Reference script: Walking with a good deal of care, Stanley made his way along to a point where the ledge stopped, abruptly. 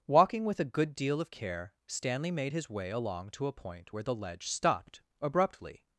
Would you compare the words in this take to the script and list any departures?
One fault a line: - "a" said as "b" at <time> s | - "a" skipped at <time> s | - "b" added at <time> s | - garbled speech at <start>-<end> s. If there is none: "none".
none